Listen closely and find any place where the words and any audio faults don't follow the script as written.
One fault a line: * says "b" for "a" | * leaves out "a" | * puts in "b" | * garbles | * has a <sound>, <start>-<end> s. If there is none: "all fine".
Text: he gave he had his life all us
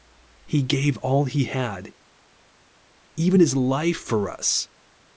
* puts in "all"
* puts in "even"
* says "for" for "all"